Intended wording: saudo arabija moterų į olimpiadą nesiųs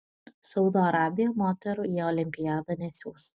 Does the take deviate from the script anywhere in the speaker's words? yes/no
no